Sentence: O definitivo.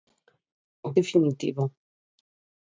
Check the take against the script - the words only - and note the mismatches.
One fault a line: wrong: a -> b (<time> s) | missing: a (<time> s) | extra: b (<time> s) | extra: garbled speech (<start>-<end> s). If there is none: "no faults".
no faults